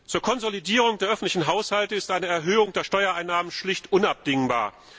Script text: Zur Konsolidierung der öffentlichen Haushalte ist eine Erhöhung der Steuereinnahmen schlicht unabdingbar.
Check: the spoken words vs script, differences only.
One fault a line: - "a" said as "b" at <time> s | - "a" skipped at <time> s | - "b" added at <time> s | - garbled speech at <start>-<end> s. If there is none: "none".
none